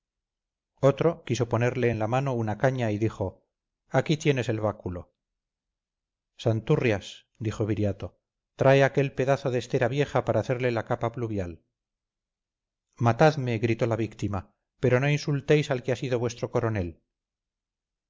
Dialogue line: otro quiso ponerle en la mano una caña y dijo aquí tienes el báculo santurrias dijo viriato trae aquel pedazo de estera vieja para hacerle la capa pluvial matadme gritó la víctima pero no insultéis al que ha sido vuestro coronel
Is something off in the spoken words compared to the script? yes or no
no